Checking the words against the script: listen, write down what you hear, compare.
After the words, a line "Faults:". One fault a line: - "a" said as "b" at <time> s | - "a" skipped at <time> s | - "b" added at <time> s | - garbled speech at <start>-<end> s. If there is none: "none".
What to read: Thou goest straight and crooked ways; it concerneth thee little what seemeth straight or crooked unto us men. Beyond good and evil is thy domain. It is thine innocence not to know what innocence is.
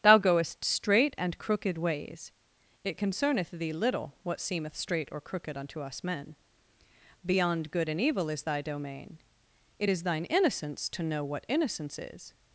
Thou goest straight and crooked ways; it concerneth thee little what seemeth straight or crooked unto us men. Beyond good and evil is thy domain. It is thine innocence to know what innocence is.
Faults:
- "not" skipped at 10.9 s